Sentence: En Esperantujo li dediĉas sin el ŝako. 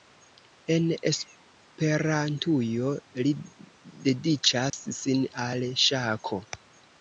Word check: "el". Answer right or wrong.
wrong